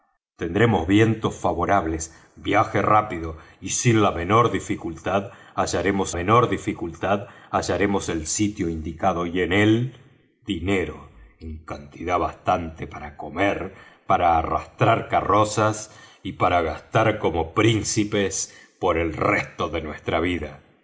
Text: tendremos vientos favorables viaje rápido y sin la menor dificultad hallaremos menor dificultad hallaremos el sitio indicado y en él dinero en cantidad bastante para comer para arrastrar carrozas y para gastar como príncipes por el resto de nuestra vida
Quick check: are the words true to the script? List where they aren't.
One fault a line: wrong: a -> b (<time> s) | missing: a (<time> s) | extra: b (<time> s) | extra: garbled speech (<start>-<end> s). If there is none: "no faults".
no faults